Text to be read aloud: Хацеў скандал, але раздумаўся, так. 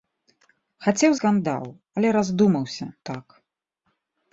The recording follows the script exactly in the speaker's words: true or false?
true